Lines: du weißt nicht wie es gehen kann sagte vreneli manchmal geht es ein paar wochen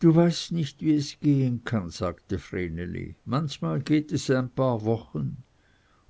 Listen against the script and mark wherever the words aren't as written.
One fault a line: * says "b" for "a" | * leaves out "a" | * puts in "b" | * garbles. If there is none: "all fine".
all fine